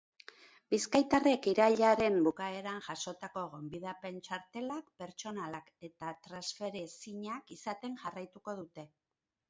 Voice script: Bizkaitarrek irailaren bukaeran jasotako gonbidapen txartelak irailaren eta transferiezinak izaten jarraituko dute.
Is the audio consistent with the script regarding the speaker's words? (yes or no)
no